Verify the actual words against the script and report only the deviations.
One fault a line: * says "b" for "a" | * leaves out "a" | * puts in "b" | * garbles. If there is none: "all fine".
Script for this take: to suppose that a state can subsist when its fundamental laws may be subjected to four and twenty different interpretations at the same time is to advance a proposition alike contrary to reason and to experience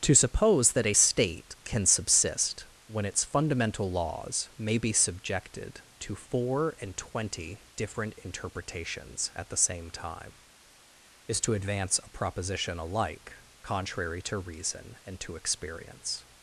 all fine